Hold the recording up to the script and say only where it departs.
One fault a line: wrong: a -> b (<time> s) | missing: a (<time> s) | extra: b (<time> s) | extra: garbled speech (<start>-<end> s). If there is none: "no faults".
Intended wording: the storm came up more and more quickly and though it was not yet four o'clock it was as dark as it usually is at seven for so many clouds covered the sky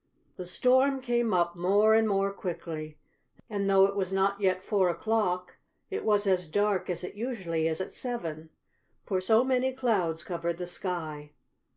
no faults